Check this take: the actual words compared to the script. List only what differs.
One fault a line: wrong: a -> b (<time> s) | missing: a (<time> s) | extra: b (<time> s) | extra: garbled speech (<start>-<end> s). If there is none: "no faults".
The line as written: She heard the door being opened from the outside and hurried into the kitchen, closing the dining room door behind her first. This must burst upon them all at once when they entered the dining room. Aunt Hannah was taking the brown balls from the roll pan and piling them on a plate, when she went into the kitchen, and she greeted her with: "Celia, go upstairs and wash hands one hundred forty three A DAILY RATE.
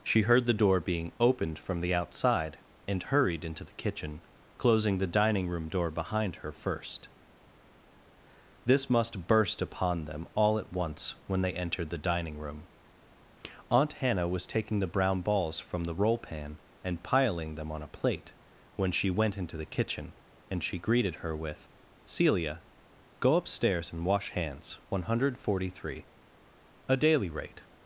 no faults